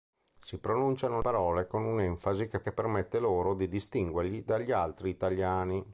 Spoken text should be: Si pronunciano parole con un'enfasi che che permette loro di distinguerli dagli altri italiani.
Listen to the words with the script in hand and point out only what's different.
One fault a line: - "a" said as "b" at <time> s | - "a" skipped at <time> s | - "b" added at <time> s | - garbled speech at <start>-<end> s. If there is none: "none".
none